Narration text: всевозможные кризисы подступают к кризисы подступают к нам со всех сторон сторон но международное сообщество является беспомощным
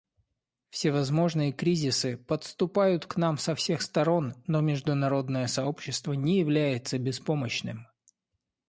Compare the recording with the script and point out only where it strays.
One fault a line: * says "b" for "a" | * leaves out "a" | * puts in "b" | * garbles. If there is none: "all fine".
* leaves out "кризисы подступают к"
* leaves out "сторон"
* puts in "не"